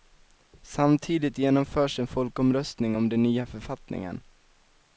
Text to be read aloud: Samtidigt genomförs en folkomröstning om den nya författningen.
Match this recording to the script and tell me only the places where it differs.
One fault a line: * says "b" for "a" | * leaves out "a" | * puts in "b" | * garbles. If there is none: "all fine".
all fine